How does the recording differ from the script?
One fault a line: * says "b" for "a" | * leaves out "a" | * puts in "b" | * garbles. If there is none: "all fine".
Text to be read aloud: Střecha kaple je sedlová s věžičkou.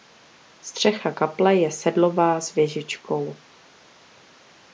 all fine